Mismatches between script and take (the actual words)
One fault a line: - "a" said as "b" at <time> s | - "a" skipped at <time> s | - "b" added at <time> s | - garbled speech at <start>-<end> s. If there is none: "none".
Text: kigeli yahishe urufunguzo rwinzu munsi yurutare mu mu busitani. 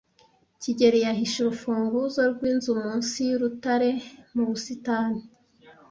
- "mu" skipped at 4.4 s